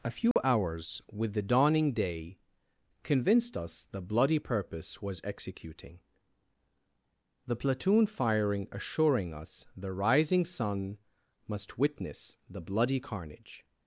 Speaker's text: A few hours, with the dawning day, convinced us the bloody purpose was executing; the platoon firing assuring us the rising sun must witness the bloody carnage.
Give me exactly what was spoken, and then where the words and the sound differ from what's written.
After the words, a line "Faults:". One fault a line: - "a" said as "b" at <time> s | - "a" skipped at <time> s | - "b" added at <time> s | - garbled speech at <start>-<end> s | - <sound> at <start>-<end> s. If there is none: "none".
A few hours, with the dawning day, convinced us the bloody purpose was executing; the platoon firing assuring us the rising sun must witness the bloody carnage.
Faults:
- dropout at 0.3-0.4 s